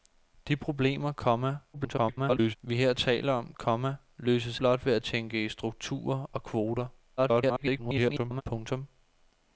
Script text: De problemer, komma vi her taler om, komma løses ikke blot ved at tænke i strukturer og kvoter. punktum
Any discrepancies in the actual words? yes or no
yes